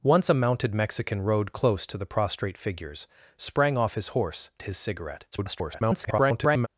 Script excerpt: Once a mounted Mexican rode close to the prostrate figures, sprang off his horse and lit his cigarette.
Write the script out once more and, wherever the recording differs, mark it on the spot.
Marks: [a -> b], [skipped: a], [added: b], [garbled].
Once a mounted Mexican rode close to the prostrate figures, sprang off his horse [skipped: and lit] his cigarette. [garbled]